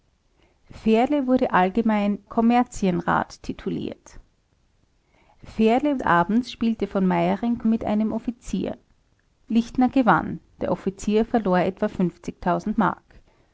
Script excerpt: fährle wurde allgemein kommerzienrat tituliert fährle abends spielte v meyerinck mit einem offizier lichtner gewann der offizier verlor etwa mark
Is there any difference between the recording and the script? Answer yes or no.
no